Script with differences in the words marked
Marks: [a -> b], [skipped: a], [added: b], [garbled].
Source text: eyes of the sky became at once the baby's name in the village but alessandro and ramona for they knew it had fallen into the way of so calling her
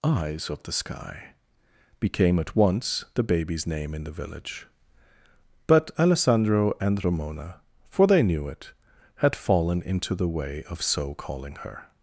eyes of the sky became at once the baby's name in the village but alessandro and ramona for they knew it had fallen into the way of so calling her